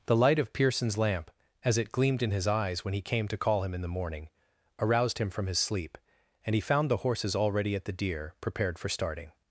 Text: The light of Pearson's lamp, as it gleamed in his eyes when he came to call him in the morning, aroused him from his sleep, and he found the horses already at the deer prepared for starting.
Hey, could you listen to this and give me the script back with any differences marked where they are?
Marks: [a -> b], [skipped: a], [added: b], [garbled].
The light of Pearson's lamp, as it gleamed in his eyes when he came to call him in the morning, aroused him from his sleep, and he found the horses already at the deer prepared for starting.